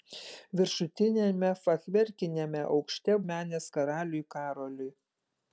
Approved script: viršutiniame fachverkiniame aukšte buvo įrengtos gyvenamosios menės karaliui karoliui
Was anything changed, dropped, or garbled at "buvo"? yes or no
yes